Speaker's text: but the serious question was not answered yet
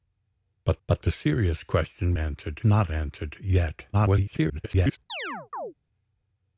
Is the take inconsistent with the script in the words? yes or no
yes